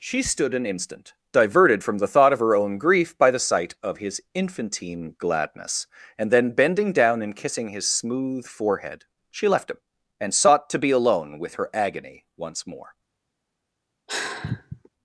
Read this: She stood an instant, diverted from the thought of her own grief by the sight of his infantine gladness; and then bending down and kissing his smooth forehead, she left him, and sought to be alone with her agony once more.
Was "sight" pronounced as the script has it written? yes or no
yes